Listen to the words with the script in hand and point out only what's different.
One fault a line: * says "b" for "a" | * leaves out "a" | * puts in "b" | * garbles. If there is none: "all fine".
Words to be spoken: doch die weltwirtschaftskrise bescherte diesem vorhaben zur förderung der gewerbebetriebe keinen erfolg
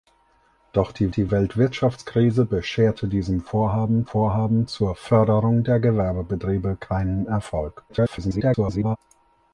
* puts in "die"
* puts in "vorhaben"
* garbles